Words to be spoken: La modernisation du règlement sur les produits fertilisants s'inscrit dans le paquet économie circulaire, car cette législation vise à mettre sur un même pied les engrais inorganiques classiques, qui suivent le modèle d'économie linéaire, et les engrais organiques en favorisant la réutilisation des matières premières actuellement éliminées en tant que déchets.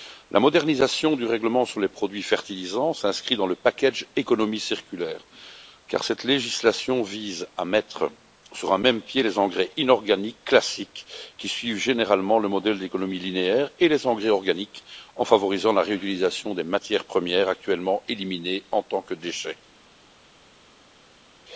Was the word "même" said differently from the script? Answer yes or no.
no